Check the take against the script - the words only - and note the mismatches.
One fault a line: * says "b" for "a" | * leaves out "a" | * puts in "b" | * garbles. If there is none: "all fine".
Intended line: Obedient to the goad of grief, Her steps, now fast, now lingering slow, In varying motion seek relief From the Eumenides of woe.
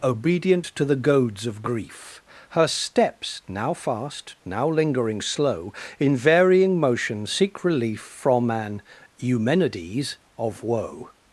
* says "goads" for "goad"
* says "an" for "the"